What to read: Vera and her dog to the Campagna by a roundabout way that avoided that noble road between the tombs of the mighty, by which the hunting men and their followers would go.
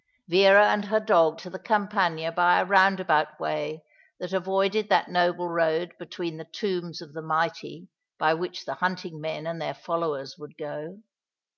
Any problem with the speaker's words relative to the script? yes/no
no